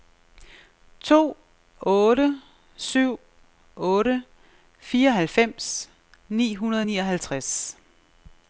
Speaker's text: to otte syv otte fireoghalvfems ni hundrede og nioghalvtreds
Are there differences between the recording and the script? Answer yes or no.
no